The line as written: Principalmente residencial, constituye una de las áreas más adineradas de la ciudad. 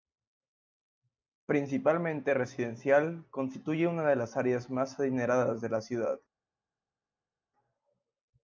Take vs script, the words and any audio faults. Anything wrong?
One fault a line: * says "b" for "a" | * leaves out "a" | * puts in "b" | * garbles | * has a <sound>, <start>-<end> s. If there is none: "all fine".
all fine